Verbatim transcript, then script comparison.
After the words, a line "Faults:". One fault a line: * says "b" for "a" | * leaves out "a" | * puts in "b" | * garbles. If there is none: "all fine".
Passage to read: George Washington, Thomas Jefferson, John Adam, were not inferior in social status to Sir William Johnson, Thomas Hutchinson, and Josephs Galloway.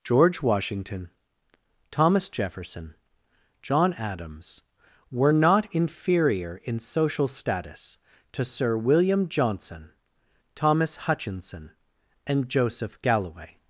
George Washington, Thomas Jefferson, John Adams, were not inferior in social status to Sir William Johnson, Thomas Hutchinson, and Joseph Galloway.
Faults:
* says "Adams" for "Adam"
* says "Joseph" for "Josephs"